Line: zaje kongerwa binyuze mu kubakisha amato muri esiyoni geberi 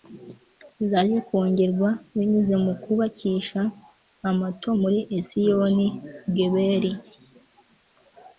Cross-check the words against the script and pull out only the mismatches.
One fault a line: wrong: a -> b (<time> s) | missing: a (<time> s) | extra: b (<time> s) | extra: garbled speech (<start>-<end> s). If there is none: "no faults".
no faults